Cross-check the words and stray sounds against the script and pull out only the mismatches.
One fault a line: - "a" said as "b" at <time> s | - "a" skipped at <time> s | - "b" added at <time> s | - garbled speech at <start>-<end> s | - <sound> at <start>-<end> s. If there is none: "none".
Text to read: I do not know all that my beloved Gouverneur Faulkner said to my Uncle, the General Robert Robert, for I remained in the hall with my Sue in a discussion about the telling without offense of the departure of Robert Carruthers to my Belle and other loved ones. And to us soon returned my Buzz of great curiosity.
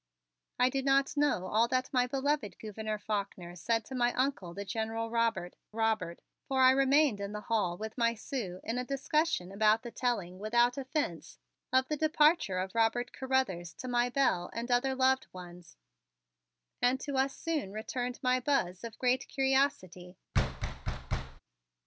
- thud at 20.3-21.4 s